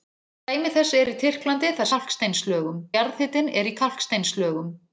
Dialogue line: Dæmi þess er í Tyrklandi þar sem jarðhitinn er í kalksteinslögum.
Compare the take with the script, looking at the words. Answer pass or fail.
fail